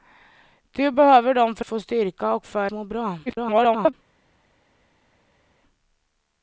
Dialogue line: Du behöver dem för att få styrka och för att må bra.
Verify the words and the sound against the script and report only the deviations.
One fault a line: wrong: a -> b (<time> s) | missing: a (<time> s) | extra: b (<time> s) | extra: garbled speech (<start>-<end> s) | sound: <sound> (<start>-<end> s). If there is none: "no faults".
missing: att (1.6 s)
missing: att (2.7 s)
extra: garbled speech (3.3-3.9 s)